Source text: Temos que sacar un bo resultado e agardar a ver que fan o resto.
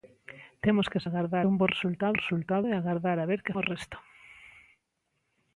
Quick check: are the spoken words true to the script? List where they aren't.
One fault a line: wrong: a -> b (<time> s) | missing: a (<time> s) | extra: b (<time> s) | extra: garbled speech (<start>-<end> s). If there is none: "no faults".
wrong: sacar -> agardar (1.0 s)
extra: resultado (2.2 s)
missing: fan (3.6 s)